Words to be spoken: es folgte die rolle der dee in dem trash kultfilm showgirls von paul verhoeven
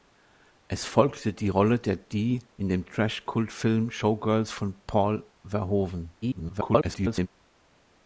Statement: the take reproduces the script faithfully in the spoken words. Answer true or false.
false